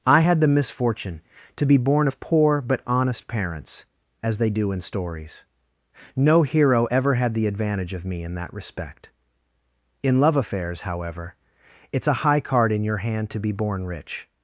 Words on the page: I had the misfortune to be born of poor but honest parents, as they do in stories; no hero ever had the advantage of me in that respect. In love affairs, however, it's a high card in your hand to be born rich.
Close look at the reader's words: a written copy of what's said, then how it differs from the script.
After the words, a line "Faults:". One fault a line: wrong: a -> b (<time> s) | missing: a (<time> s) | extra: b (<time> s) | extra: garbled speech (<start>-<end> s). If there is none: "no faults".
I had the misfortune to be born of poor but honest parents, as they do in stories; no hero ever had the advantage of me in that respect. In love affairs, however, it's a high card in your hand to be born rich.
Faults:
no faults